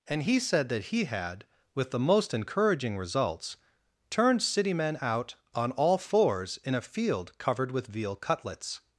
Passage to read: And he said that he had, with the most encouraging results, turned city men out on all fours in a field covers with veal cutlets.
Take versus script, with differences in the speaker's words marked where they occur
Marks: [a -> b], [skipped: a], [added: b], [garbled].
And he said that he had, with the most encouraging results, turned city men out on all fours in a field [covers -> covered] with veal cutlets.